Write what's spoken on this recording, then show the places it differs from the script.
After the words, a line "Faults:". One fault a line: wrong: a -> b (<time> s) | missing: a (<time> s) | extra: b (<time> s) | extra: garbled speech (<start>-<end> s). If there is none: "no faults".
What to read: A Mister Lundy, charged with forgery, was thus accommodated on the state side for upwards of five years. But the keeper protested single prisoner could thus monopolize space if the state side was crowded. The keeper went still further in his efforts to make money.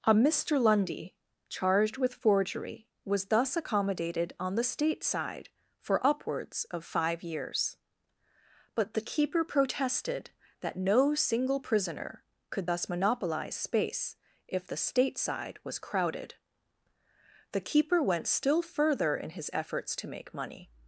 A Mister Lundy, charged with forgery, was thus accommodated on the state side for upwards of five years. But the keeper protested that no single prisoner could thus monopolize space if the state side was crowded. The keeper went still further in his efforts to make money.
Faults:
extra: that no (10.6 s)